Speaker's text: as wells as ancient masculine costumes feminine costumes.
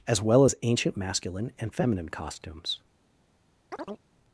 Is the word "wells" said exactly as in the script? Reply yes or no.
no